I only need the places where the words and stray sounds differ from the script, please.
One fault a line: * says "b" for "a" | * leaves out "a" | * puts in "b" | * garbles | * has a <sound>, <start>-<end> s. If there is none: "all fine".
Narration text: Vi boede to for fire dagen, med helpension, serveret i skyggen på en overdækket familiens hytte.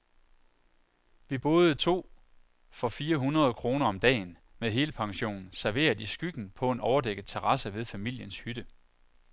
* puts in "hundrede kroner om"
* puts in "terrasse ved"